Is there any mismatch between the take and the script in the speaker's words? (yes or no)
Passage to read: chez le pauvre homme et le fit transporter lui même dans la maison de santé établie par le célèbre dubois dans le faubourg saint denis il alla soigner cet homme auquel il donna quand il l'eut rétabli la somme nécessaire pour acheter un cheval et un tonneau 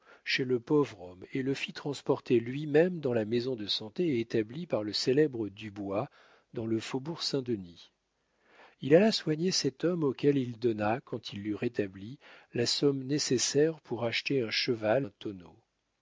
yes